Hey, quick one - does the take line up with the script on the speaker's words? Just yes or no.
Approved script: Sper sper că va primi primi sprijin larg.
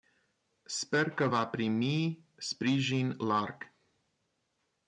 no